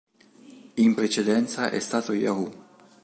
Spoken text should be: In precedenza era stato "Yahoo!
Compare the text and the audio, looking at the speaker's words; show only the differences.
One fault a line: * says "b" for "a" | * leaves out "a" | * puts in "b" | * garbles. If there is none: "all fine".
* says "è" for "era"